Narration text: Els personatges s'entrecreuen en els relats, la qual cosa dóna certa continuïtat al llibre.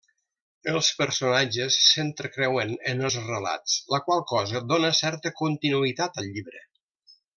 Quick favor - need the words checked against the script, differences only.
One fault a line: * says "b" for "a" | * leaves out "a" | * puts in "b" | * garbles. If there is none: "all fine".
all fine